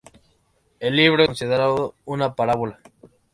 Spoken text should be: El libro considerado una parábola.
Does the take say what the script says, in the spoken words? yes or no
yes